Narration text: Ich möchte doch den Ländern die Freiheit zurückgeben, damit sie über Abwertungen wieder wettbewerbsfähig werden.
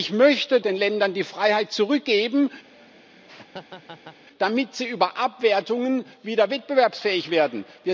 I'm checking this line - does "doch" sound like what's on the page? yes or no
no